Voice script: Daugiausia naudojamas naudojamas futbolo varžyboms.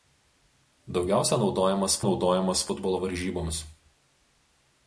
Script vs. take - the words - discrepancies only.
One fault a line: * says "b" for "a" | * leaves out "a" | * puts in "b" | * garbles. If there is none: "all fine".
all fine